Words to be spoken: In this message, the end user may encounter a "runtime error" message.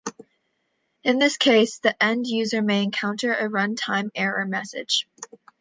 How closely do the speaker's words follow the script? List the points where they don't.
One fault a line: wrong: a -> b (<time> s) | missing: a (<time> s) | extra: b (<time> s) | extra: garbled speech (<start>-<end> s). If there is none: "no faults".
wrong: message -> case (1.4 s)